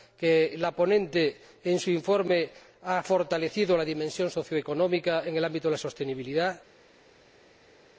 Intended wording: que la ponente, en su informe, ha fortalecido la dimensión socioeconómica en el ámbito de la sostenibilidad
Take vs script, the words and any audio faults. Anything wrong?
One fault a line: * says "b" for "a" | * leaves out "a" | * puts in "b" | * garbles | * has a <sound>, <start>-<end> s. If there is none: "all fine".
all fine